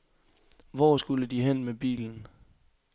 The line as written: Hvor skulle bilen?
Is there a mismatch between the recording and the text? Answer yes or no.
yes